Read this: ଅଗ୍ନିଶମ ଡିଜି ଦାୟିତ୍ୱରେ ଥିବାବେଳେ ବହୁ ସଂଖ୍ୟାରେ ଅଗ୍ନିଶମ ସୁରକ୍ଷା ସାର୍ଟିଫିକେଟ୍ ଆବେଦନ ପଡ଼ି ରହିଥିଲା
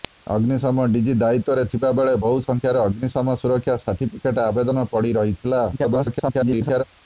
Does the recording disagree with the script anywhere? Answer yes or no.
yes